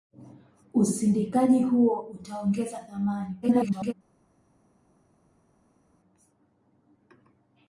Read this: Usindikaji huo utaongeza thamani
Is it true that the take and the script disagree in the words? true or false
true